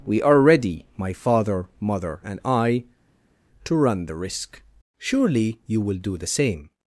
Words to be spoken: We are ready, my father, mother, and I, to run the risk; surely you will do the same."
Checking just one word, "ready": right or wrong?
right